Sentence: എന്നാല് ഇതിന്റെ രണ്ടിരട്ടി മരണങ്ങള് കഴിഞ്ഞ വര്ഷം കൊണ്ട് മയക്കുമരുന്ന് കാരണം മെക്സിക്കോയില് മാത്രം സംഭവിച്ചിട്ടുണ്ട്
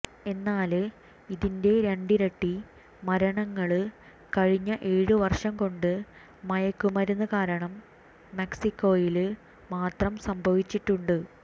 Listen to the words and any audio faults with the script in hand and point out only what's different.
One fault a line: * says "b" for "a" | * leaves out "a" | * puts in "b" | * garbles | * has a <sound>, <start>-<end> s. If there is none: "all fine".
* puts in "ഏഴു"